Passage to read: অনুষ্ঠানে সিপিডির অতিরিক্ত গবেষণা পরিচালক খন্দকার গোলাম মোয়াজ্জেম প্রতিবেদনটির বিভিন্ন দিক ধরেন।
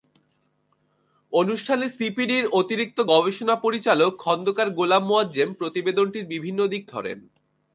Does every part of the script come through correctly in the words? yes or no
yes